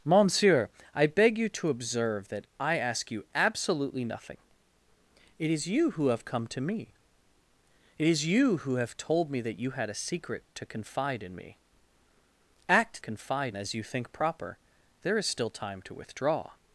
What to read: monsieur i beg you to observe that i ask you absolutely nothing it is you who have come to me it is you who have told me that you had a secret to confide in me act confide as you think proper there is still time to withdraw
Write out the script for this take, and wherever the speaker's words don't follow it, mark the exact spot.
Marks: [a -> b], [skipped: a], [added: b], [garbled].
monsieur i beg you to observe that i ask you absolutely nothing it is you who have come to me it is you who have told me that you had a secret to confide in me act confide as you think proper there is still time to withdraw